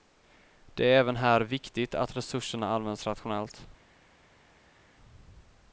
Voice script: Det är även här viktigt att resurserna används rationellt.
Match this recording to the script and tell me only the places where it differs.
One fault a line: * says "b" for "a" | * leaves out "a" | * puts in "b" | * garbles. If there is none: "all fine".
all fine